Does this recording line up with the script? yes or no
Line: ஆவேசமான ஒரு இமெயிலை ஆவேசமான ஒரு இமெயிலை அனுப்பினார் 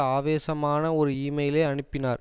no